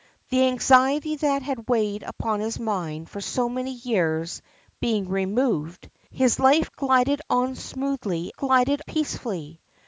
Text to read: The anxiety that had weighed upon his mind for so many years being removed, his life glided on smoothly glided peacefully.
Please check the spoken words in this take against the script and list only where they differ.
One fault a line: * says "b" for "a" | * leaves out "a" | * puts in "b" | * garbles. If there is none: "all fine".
all fine